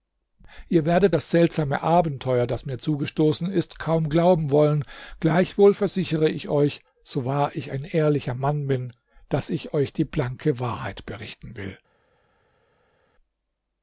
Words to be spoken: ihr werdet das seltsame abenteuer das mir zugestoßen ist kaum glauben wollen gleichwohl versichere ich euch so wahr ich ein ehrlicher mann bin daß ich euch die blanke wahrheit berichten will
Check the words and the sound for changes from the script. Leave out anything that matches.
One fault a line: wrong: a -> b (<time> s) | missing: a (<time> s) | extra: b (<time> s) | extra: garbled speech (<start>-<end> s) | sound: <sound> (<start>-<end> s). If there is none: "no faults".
no faults